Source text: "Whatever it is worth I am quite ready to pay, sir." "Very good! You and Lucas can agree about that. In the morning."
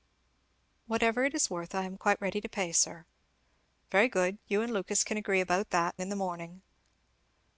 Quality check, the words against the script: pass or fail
pass